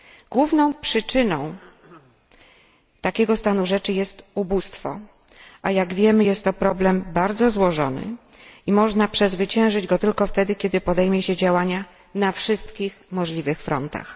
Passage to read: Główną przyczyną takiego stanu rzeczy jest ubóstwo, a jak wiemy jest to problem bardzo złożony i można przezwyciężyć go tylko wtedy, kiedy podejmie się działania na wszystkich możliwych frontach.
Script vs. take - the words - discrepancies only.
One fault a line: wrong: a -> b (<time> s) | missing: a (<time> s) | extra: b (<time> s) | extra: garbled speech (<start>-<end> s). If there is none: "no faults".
no faults